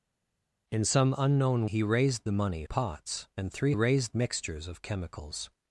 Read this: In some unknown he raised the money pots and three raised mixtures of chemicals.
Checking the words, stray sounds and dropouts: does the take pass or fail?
pass